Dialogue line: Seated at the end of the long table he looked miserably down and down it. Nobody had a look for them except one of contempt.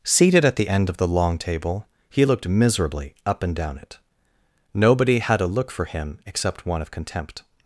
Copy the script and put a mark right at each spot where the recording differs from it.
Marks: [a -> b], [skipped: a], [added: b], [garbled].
Seated at the end of the long table he looked miserably [down -> up] and down it. Nobody had a look for [them -> him] except one of contempt.